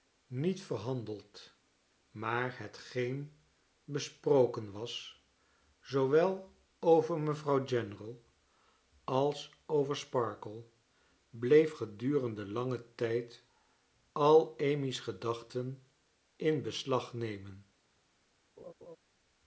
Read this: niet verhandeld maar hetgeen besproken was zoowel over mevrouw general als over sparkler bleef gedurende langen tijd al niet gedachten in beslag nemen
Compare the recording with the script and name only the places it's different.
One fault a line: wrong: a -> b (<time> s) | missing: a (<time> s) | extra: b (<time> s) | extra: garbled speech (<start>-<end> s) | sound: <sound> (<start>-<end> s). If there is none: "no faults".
wrong: niet -> amy's (14.6 s)
sound: laugh (18.6-19.0 s)